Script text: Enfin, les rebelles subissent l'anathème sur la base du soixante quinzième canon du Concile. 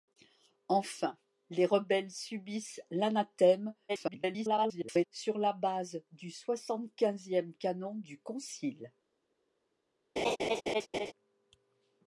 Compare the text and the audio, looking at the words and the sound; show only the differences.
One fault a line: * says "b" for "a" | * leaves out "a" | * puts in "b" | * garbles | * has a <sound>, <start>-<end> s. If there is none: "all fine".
* garbles
* has a laugh, 10.2-11.1 s